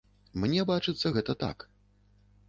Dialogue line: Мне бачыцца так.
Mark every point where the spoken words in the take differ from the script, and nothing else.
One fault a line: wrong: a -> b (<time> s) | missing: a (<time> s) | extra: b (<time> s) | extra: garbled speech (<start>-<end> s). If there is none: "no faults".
extra: гэта (1.2 s)